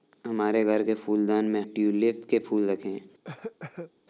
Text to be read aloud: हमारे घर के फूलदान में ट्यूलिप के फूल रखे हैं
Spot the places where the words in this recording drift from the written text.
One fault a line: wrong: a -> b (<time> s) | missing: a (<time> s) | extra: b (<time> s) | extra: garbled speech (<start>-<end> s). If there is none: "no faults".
no faults